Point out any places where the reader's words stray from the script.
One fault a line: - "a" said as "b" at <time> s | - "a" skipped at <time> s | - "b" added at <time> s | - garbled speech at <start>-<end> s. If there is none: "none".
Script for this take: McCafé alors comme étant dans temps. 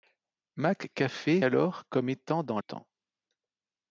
none